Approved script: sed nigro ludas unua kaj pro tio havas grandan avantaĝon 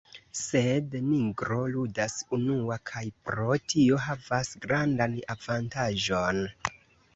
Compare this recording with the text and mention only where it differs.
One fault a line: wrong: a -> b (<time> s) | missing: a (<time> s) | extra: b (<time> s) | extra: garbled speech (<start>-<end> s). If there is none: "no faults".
no faults